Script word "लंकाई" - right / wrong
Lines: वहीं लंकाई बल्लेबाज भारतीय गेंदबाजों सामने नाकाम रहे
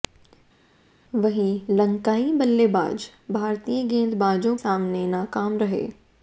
right